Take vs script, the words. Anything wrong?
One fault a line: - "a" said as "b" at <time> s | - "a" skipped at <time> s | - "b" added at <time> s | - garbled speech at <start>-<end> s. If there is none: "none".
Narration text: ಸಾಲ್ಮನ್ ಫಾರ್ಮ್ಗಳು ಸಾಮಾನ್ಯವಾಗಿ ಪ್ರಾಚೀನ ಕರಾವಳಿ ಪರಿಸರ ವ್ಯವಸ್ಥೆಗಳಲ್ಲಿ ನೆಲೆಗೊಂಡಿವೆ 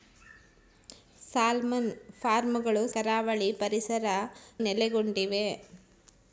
- "ಸಾಮಾನ್ಯವಾಗಿ ಪ್ರಾಚೀನ" skipped at 2.8 s
- "ವ್ಯವಸ್ಥೆಗಳಲ್ಲಿ" skipped at 4.1 s